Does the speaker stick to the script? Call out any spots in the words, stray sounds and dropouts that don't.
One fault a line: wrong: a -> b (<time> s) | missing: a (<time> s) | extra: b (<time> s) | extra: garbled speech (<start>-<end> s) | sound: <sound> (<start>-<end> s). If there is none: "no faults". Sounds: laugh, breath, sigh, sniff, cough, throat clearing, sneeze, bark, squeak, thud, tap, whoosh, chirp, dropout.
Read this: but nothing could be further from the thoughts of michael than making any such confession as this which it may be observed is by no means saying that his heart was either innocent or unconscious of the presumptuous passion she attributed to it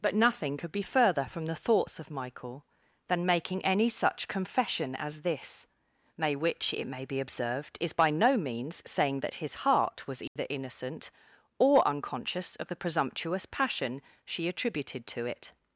extra: may (6.2 s)
sound: dropout (10.3-10.4 s)